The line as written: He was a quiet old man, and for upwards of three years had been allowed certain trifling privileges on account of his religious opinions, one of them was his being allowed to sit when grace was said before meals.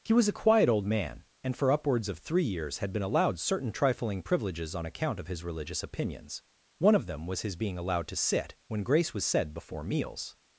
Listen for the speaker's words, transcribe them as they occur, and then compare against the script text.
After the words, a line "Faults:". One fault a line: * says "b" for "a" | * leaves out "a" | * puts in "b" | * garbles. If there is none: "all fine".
He was a quiet old man, and for upwards of three years had been allowed certain trifling privileges on account of his religious opinions, one of them was his being allowed to sit when grace was said before meals.
Faults:
all fine